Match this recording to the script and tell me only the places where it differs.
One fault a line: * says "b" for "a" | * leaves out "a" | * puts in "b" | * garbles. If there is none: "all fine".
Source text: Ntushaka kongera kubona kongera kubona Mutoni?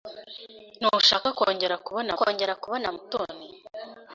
all fine